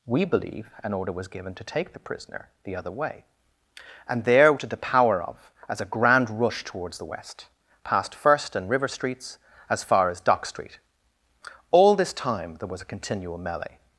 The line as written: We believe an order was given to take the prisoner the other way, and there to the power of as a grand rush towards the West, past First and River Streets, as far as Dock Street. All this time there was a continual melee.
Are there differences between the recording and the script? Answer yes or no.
no